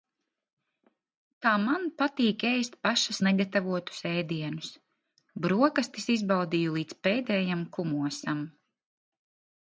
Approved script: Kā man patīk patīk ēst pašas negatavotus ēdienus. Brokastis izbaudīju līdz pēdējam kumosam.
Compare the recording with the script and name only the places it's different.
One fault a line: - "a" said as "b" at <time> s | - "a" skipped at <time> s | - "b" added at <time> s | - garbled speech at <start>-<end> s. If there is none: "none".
- "patīk" skipped at 2.5 s